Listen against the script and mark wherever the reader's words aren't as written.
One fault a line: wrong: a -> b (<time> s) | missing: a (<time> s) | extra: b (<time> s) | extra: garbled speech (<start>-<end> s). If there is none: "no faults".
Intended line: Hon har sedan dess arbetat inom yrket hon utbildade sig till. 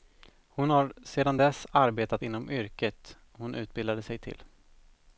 no faults